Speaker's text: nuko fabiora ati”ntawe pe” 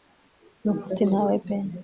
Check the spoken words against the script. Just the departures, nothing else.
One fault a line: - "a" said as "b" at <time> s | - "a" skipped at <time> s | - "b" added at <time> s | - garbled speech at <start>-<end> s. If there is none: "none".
- "fabiora" skipped at 0.8 s